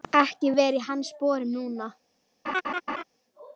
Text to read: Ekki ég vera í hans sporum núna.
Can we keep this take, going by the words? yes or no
yes